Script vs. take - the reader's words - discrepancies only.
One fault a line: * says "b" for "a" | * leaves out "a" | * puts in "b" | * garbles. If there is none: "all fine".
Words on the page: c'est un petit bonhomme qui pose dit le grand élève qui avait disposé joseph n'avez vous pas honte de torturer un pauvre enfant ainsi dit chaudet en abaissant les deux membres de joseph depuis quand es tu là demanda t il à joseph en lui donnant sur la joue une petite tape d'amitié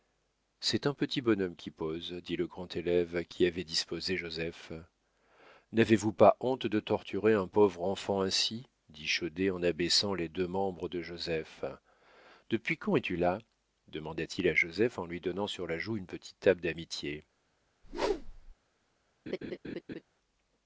all fine